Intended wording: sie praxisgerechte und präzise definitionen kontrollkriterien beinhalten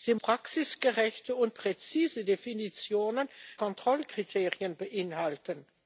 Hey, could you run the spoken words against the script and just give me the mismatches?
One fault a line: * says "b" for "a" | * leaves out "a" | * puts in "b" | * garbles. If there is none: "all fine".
all fine